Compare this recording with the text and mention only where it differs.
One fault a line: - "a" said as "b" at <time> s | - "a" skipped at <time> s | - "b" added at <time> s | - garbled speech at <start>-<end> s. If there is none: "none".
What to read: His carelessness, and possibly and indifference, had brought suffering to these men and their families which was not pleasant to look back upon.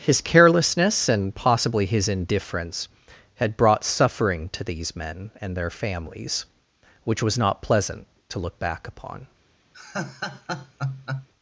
- "and" said as "his" at 1.9 s